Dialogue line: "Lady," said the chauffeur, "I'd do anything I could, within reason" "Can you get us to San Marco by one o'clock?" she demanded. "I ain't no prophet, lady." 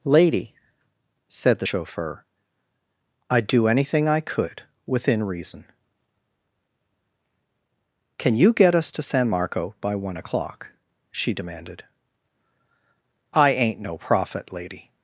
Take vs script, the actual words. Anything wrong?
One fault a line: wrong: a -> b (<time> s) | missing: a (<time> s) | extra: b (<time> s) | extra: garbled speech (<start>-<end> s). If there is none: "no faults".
no faults